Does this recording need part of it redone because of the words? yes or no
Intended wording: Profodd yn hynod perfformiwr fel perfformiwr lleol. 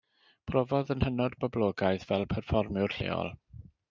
yes